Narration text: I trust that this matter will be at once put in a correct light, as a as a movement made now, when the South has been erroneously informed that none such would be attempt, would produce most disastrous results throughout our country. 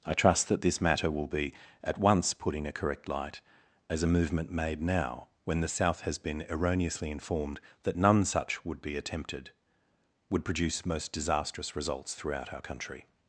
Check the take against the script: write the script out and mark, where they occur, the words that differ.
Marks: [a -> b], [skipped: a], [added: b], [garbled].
I trust that this matter will be at once put in a correct light, as a [skipped: as a] movement made now, when the South has been erroneously informed that none such would be [attempt, -> attempted] would produce most disastrous results throughout our country.